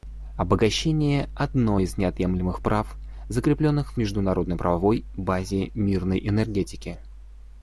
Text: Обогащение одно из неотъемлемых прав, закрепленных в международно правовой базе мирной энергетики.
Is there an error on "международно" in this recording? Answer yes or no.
no